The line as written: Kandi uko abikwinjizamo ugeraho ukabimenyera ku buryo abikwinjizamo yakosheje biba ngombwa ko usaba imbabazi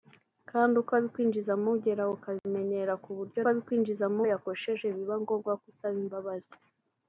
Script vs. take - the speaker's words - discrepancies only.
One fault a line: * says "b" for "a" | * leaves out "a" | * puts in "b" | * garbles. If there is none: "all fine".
all fine